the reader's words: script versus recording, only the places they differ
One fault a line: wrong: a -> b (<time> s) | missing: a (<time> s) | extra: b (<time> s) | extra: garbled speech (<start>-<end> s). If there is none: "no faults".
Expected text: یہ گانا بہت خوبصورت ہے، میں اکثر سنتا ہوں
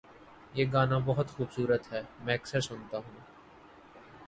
no faults